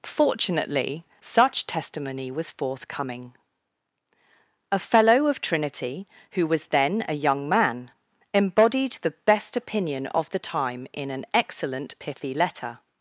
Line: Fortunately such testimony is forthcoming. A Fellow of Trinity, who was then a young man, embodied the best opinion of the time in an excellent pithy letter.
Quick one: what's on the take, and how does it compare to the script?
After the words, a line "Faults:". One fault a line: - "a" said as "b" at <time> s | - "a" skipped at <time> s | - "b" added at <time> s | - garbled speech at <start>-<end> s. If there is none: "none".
Fortunately such testimony was forthcoming. A Fellow of Trinity, who was then a young man, embodied the best opinion of the time in an excellent pithy letter.
Faults:
- "is" said as "was" at 2.3 s